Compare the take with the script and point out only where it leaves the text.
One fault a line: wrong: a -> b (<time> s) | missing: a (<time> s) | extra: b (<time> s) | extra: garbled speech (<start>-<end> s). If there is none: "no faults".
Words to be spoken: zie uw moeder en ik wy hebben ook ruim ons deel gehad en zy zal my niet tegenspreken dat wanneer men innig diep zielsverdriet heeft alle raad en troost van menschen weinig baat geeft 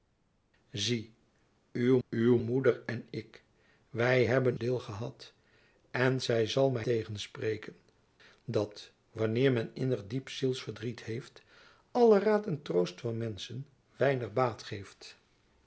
extra: uw (2.1 s)
missing: ook ruim ons (4.6 s)
missing: niet (6.9 s)